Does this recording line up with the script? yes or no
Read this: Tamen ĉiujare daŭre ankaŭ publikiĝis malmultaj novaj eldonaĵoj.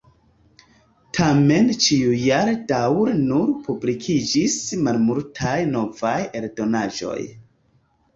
no